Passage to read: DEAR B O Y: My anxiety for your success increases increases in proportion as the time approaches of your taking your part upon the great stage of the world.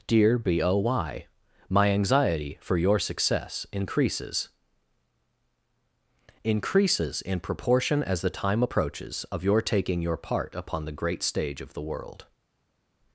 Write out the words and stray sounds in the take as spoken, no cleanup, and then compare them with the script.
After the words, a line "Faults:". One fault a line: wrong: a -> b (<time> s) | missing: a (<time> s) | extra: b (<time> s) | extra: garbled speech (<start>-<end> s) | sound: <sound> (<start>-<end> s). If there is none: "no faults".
DEAR B O Y: My anxiety for your success increases increases in proportion as the time approaches of your taking your part upon the great stage of the world.
Faults:
no faults